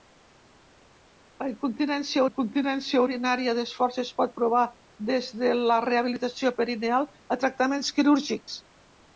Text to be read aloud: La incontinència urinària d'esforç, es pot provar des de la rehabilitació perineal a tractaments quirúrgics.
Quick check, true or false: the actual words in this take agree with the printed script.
false